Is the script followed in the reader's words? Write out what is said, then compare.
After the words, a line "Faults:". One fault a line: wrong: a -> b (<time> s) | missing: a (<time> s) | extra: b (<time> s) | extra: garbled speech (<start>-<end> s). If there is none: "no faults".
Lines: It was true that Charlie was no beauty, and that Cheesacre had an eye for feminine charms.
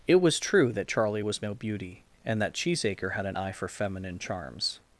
It was true that Charlie was no beauty, and that Cheesacre had an eye for feminine charms.
Faults:
no faults